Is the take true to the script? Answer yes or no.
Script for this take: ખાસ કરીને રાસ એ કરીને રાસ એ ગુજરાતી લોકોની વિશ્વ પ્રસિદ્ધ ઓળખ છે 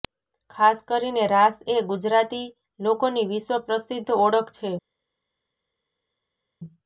no